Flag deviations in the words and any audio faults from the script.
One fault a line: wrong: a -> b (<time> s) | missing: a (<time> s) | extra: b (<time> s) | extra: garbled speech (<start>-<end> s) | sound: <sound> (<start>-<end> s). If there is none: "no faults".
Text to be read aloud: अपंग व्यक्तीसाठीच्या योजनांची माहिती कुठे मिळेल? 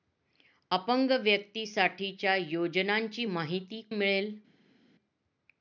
missing: कुठे (3.8 s)